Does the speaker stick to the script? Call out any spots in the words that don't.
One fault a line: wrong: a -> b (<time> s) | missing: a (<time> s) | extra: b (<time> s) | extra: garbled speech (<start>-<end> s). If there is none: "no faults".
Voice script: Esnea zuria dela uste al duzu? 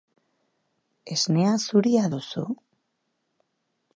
missing: dela uste al (2.1 s)